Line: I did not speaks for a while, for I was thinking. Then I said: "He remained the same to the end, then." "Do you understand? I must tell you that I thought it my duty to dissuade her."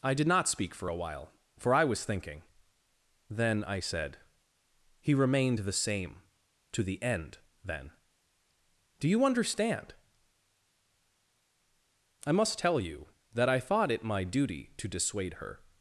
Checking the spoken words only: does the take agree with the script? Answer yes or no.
no